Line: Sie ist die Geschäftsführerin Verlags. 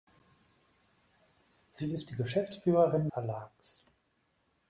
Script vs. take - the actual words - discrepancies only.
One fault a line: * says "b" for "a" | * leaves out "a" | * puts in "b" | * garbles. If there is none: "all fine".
all fine